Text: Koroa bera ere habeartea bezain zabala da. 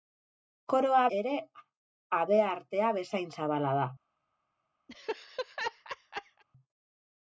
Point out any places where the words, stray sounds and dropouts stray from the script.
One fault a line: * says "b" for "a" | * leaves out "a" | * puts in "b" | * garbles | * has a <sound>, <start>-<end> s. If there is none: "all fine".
* leaves out "bera"
* has a laugh, 4.9-6.4 s